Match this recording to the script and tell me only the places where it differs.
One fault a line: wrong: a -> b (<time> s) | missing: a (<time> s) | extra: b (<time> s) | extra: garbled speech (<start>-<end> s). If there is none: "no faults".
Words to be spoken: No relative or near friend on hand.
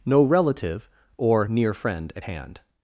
wrong: on -> at (2.1 s)